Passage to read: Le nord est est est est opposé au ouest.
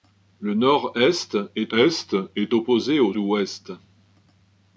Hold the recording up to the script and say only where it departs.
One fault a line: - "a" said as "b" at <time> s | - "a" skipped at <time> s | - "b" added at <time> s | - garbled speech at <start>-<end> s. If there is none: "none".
none